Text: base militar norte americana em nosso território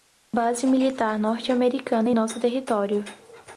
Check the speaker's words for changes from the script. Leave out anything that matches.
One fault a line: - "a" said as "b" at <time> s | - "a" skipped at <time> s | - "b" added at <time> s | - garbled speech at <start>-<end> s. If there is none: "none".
none